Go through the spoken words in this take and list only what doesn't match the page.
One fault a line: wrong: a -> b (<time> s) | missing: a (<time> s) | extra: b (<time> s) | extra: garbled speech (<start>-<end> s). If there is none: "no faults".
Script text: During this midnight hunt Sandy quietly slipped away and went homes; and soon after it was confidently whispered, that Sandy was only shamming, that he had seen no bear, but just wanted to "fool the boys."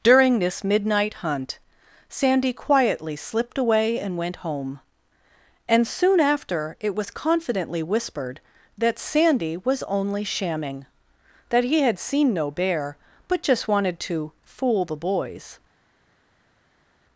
wrong: homes -> home (4.4 s)